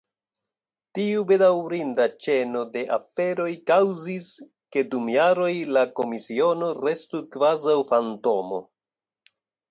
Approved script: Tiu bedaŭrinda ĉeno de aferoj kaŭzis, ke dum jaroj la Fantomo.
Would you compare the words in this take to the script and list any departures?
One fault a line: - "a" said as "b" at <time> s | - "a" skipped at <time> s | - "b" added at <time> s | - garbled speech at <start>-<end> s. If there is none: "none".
- "Komisiono restu kvazaŭ" added at 6.0 s